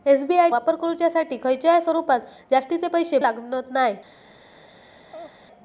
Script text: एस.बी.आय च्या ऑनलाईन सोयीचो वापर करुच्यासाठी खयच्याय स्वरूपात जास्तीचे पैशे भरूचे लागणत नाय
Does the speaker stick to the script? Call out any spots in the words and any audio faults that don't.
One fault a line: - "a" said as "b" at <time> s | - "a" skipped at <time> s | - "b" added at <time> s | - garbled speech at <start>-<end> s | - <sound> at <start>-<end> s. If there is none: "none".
- "च्या ऑनलाईन सोयीचो" skipped at 0.5 s
- "भरूचे" skipped at 3.2 s
- laugh at 5.1-5.4 s